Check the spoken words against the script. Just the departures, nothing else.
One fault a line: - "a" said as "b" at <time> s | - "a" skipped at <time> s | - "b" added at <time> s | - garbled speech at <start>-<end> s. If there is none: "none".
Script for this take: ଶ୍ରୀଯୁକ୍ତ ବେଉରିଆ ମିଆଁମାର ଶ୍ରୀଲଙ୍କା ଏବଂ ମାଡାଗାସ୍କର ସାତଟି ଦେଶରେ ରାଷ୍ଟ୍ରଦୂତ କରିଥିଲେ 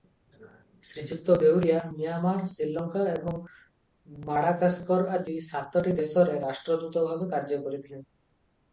- "ଆଦି" added at 5.2 s
- "ଭାବେ କାର୍ଯ୍ୟ" added at 7.1 s